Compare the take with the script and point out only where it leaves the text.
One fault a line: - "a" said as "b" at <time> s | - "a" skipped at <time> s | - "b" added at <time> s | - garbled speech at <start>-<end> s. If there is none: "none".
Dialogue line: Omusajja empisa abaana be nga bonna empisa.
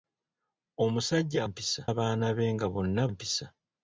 none